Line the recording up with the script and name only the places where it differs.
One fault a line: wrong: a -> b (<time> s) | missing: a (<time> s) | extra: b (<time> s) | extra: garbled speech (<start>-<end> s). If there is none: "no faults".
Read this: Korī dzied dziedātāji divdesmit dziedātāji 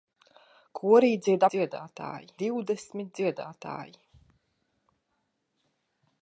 no faults